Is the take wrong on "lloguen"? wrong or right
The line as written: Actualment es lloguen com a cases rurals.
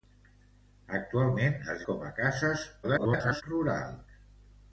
wrong